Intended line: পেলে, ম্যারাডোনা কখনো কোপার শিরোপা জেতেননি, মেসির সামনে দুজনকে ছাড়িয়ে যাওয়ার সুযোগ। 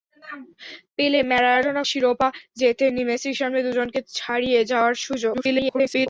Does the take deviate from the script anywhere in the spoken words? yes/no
yes